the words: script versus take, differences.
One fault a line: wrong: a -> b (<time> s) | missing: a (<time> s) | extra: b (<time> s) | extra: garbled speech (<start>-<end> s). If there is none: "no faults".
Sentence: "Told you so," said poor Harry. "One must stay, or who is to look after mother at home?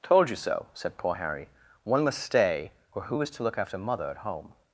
no faults